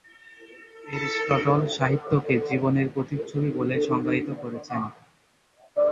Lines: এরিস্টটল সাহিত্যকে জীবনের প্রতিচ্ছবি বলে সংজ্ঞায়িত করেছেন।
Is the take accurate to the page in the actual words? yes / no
yes